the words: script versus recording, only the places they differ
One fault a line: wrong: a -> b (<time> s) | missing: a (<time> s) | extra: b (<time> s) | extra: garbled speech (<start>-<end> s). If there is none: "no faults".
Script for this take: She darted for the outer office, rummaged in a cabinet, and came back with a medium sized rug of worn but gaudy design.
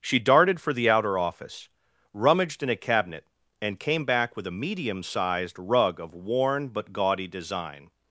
no faults